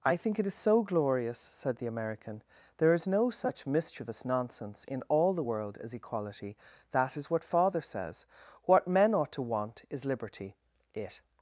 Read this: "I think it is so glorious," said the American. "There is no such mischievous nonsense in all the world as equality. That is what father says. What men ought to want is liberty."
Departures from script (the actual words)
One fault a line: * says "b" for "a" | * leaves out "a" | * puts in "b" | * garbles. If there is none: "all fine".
* puts in "It"